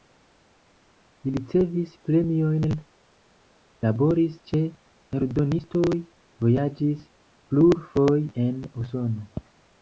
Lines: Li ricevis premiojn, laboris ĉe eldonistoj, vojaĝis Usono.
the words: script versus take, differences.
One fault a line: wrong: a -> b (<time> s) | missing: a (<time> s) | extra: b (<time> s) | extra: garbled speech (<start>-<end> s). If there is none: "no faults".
extra: plurfoje en (7.5 s)